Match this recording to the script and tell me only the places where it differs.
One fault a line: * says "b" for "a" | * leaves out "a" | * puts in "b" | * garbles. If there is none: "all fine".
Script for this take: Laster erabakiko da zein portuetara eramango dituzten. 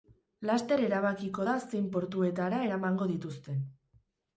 all fine